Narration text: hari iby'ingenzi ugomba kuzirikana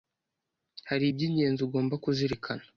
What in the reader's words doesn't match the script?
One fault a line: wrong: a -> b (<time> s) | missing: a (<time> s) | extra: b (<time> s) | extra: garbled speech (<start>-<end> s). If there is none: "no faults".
no faults